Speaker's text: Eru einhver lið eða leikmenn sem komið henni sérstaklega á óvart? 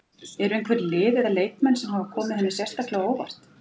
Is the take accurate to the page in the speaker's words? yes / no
no